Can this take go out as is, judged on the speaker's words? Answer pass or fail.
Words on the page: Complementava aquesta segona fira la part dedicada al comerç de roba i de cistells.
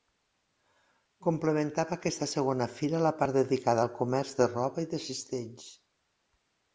pass